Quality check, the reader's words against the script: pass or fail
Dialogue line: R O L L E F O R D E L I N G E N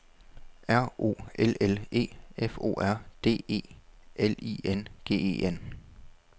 pass